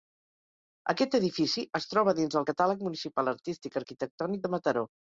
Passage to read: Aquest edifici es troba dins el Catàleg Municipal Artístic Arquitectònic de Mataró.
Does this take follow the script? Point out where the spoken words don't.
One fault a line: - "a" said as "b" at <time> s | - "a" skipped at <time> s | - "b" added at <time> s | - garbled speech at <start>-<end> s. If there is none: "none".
none